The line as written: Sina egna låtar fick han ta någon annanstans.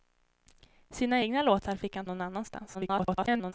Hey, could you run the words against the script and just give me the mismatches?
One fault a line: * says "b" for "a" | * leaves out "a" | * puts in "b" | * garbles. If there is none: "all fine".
* leaves out "ta"
* garbles